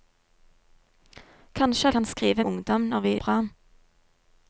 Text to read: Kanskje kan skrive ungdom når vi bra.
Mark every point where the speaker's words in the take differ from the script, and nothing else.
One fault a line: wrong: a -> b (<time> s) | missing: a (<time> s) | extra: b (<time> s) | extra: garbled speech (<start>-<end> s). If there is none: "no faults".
no faults